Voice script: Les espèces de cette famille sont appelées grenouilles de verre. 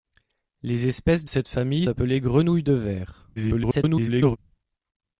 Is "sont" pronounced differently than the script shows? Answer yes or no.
yes